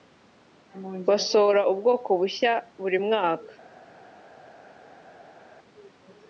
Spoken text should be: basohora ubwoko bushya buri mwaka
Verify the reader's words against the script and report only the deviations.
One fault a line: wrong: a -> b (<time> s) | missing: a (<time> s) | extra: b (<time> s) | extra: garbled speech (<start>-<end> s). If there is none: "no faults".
no faults